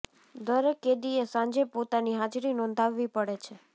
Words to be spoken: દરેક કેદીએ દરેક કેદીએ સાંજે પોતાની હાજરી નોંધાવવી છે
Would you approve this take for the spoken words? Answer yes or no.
no